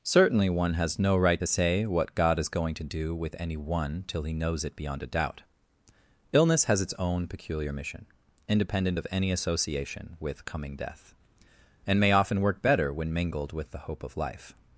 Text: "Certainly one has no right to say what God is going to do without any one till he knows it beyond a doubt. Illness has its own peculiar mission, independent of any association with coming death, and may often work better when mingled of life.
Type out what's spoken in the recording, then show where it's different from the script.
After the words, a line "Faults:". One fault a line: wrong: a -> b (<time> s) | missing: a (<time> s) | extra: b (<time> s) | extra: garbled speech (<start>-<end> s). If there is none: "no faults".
"Certainly one has no right to say what God is going to do with any one till he knows it beyond a doubt. Illness has its own peculiar mission, independent of any association with coming death, and may often work better when mingled with the hope of life.
Faults:
wrong: without -> with (3.2 s)
extra: with the hope (13.5 s)